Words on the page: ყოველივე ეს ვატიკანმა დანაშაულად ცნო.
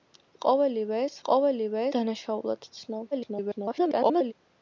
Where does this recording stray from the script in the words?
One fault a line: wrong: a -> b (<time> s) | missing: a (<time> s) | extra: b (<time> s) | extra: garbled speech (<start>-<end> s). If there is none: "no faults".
wrong: ვატიკანმა -> ყოველივე (1.3 s)
extra: garbled speech (3.1-4.3 s)